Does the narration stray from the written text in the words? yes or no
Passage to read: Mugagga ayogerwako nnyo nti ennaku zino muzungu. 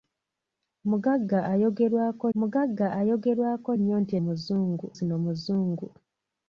yes